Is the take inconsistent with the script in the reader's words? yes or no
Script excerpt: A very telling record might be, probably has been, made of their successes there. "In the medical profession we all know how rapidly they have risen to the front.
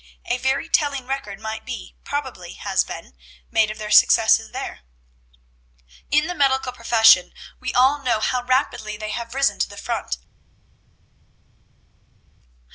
no